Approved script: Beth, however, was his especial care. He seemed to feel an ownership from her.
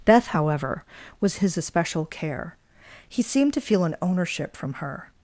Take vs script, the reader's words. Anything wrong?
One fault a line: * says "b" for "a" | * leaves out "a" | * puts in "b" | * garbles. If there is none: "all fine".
all fine